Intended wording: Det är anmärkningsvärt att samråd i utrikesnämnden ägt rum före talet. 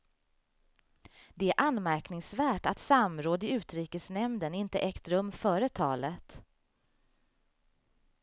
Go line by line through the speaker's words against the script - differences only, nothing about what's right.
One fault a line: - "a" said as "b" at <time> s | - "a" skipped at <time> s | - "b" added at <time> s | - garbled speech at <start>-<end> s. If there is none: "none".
- "inte" added at 4.5 s